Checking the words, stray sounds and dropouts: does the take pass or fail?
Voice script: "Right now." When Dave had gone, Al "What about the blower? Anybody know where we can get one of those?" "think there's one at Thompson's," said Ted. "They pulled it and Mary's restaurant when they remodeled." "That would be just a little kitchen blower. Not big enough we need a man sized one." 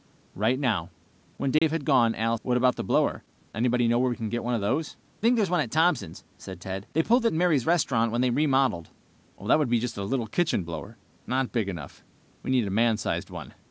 fail